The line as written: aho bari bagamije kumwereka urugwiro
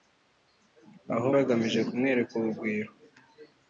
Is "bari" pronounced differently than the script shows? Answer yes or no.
yes